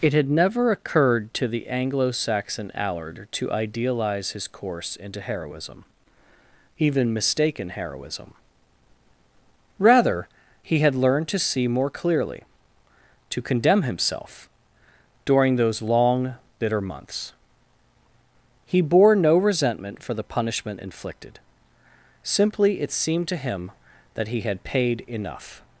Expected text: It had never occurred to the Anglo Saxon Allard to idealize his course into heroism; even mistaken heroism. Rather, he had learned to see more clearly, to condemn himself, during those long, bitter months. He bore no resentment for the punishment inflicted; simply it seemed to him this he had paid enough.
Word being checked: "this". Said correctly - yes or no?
no